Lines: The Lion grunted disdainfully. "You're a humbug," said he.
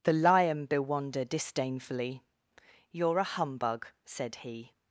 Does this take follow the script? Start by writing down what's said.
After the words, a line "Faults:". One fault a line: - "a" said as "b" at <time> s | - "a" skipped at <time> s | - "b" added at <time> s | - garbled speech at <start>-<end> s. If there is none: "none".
The Lion bewonder disdainfully. "You're a humbug," said he.
Faults:
- "grunted" said as "bewonder" at 0.7 s